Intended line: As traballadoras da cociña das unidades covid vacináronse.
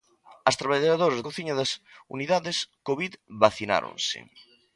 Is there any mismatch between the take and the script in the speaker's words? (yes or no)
yes